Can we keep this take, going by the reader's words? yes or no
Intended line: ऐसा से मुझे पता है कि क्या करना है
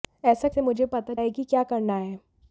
yes